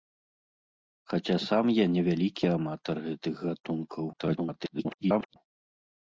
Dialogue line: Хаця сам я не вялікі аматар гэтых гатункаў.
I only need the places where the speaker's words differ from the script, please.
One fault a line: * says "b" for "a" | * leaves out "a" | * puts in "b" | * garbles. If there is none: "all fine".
* garbles